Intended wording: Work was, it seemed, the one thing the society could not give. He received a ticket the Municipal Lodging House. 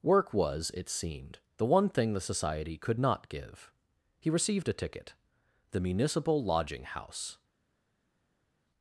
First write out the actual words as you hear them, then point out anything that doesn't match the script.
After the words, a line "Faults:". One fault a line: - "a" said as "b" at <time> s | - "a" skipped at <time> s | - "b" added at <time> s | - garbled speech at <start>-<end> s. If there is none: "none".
Work was, it seemed, the one thing the society could not give. He received a ticket the Municipal Lodging House.
Faults:
none